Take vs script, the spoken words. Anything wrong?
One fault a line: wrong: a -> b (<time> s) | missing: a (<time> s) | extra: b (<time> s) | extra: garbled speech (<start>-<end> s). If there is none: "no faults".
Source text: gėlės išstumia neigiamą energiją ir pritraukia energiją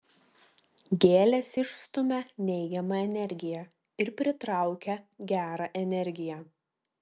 extra: gerą (5.3 s)